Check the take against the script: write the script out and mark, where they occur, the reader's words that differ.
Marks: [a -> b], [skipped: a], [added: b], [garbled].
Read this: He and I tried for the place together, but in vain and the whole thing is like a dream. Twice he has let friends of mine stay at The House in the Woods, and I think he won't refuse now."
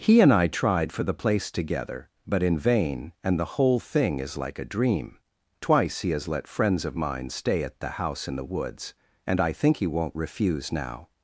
He and I tried for the place together, but in vain and the whole thing is like a dream. Twice he has let friends of mine stay at The House in the Woods, and I think he won't refuse now."